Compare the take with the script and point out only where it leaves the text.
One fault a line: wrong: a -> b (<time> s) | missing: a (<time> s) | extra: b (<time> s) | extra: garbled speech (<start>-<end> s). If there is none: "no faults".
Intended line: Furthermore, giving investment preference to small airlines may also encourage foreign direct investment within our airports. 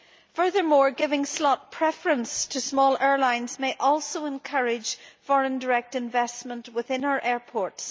wrong: investment -> slot (1.3 s)